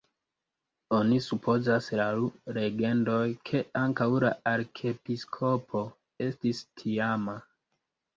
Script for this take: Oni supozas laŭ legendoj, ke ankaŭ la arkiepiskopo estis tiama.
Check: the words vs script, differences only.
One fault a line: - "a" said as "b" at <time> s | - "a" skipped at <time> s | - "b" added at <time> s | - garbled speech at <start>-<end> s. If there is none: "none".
none